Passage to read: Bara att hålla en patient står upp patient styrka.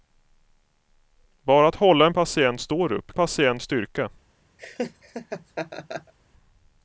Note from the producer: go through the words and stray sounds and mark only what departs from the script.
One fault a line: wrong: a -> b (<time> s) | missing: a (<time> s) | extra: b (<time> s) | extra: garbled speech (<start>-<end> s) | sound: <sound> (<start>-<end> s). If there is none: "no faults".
sound: laugh (4.6-6.1 s)